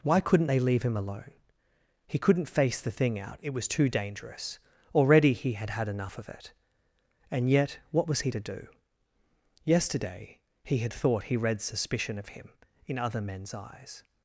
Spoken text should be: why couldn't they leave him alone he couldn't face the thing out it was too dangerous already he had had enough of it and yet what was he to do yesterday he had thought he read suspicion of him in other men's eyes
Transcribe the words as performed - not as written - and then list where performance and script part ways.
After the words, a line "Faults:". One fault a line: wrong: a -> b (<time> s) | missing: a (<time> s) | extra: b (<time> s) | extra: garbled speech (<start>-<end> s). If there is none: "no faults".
why couldn't they leave him alone he couldn't face the thing out it was too dangerous already he had had enough of it and yet what was he to do yesterday he had thought he read suspicion of him in other men's eyes
Faults:
no faults